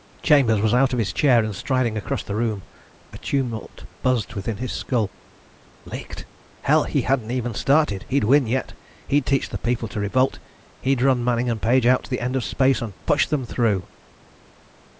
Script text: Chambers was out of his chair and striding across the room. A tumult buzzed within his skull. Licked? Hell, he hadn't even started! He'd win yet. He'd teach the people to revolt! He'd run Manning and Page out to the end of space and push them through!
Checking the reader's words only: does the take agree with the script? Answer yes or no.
yes